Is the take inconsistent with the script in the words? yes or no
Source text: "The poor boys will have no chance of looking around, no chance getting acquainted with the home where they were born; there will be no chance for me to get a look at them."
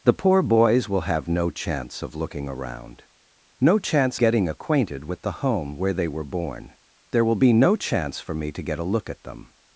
no